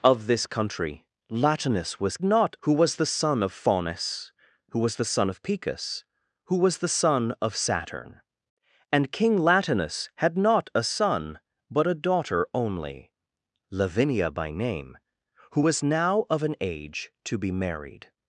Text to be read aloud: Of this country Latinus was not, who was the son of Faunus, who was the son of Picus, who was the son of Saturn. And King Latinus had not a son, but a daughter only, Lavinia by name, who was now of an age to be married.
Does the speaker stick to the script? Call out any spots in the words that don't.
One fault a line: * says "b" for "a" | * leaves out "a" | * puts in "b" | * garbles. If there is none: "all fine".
all fine